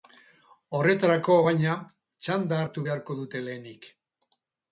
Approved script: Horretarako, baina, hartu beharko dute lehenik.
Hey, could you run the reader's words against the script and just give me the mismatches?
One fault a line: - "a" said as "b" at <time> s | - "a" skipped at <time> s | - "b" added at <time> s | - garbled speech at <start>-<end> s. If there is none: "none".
- "txanda" added at 2.3 s